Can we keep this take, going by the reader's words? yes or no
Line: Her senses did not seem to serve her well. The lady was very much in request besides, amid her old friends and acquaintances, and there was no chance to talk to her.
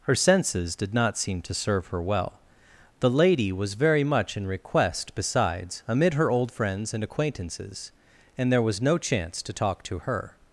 yes